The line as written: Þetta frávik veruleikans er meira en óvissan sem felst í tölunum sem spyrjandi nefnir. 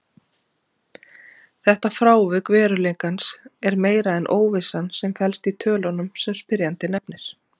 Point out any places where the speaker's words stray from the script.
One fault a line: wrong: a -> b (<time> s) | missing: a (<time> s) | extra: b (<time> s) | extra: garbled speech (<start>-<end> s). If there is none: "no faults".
no faults